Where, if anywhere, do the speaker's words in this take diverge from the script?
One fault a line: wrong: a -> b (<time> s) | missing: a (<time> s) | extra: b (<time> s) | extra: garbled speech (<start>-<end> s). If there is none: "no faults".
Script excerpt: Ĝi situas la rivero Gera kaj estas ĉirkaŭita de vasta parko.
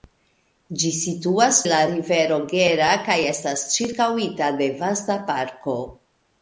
no faults